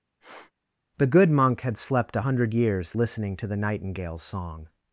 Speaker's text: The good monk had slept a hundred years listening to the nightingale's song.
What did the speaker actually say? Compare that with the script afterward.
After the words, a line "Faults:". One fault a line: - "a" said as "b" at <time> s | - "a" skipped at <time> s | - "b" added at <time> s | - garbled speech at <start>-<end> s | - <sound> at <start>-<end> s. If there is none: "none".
The good monk had slept a hundred years listening to the nightingale's song.
Faults:
- sniff at 0.2-0.5 s